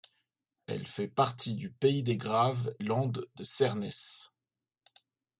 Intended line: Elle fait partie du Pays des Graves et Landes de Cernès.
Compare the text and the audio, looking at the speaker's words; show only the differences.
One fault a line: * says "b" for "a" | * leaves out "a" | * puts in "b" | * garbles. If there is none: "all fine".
* leaves out "et"